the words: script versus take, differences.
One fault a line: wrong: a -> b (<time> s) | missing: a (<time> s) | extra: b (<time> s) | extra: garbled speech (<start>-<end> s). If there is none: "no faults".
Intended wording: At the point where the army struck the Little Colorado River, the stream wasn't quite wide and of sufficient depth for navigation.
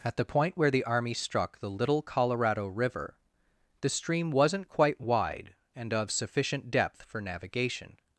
no faults